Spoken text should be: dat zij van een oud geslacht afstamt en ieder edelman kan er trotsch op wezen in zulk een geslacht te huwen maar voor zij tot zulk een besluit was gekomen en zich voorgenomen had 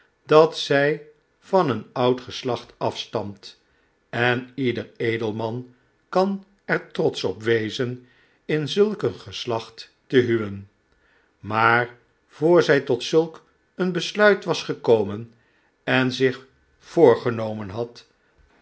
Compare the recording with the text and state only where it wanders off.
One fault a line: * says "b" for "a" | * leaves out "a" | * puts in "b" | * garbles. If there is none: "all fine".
all fine